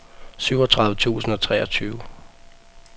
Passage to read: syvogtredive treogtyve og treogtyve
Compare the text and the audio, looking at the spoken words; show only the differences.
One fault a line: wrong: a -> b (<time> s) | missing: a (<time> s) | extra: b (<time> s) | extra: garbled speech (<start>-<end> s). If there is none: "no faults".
wrong: treogtyve -> tusind (0.9 s)